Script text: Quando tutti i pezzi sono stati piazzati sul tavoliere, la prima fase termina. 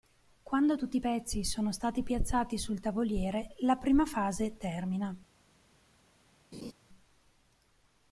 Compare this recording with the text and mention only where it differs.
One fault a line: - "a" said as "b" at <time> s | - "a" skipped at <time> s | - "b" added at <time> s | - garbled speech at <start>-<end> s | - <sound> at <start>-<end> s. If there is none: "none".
- laugh at 6.5-6.7 s